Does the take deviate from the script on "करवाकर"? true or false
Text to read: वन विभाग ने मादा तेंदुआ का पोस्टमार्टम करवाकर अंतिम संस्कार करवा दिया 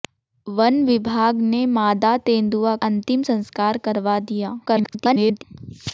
true